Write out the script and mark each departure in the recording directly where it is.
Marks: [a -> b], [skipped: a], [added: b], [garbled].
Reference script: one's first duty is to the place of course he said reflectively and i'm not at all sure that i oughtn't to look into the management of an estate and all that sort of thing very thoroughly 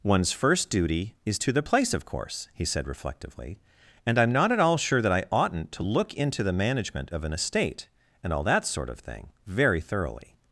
one's first duty is to the place of course he said reflectively and i'm not at all sure that i oughtn't to look into the management of an estate and all that sort of thing very thoroughly